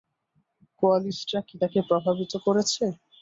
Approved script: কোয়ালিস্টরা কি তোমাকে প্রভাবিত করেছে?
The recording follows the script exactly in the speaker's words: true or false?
false